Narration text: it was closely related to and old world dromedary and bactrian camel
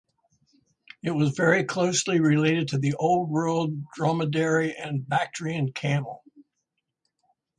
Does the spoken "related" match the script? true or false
true